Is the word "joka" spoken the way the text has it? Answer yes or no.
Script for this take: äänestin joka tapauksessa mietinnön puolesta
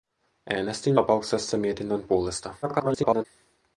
no